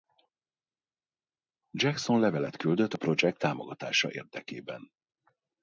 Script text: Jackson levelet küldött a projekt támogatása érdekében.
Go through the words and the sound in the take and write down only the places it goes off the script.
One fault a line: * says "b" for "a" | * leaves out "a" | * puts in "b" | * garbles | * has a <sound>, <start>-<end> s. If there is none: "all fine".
all fine